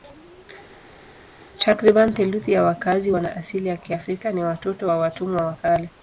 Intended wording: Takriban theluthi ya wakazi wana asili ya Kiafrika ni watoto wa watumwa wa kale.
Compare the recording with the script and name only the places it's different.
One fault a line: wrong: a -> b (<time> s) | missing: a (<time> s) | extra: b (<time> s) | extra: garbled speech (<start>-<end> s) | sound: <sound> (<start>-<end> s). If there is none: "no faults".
no faults